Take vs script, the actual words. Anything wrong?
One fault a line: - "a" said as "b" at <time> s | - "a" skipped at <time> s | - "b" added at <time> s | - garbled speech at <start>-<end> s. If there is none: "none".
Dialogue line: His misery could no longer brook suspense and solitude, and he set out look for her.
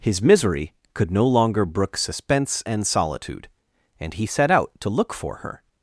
- "to" added at 4.8 s